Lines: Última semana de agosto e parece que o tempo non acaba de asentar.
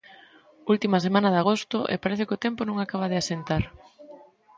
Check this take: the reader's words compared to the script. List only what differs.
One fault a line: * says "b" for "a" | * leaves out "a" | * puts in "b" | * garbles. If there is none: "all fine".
all fine